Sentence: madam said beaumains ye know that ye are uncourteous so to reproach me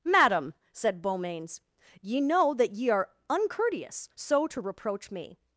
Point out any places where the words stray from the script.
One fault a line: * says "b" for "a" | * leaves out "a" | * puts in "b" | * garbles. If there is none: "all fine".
all fine